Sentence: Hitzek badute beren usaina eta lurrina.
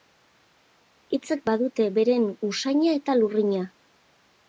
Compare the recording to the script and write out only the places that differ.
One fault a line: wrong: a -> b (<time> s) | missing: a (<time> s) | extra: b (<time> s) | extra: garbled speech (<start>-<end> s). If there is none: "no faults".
no faults